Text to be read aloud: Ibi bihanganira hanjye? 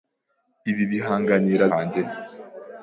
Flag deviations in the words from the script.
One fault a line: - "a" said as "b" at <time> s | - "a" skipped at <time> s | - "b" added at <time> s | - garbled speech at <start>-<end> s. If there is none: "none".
none